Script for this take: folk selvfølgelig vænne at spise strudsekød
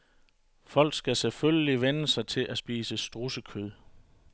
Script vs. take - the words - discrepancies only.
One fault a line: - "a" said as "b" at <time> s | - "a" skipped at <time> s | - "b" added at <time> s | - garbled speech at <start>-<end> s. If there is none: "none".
- "skal" added at 0.9 s
- "sig til" added at 2.1 s